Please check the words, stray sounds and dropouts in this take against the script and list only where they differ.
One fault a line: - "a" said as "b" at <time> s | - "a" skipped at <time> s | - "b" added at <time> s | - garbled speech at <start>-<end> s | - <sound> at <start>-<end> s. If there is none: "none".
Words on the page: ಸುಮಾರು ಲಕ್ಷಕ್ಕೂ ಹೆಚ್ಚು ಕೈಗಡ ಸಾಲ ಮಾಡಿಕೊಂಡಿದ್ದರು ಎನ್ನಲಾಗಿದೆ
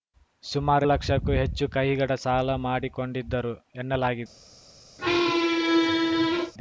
- squeak at 5.0-6.5 s